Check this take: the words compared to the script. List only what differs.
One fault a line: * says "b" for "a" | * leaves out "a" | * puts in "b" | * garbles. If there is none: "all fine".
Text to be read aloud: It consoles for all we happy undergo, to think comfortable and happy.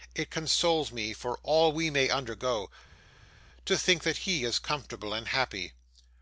* puts in "me"
* says "may" for "happy"
* puts in "that he is"